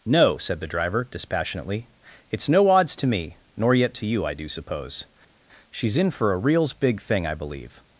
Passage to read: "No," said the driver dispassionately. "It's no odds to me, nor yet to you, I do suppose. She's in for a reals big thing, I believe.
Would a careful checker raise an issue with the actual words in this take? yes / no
no